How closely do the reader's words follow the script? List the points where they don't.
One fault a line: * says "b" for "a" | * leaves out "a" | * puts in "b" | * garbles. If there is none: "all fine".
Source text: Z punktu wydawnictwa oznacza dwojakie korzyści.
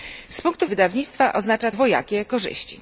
all fine